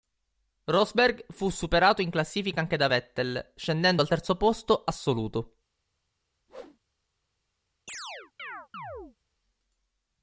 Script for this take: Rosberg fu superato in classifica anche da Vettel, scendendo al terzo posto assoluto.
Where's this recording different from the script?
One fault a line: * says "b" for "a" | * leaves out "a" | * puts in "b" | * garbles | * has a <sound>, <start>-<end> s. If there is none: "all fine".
* has a whoosh, 6.5-6.8 s
* has a chirp, 7.9-9.2 s